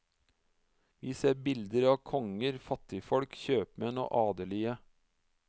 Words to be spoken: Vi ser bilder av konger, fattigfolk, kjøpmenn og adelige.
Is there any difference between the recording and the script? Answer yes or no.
no